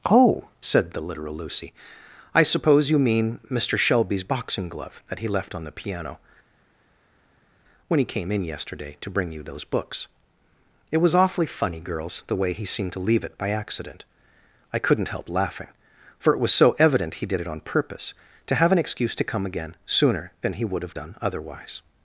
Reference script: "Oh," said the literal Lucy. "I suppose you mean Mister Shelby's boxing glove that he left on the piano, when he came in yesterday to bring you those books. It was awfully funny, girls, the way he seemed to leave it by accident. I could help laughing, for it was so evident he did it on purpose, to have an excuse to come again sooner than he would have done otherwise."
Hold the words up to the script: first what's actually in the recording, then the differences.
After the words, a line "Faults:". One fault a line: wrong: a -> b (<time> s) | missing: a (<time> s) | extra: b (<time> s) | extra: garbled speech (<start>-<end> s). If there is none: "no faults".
"Oh," said the literal Lucy. "I suppose you mean Mister Shelby's boxing glove that he left on the piano, when he came in yesterday to bring you those books. It was awfully funny, girls, the way he seemed to leave it by accident. I couldn't help laughing, for it was so evident he did it on purpose, to have an excuse to come again sooner than he would have done otherwise."
Faults:
wrong: could -> couldn't (14.8 s)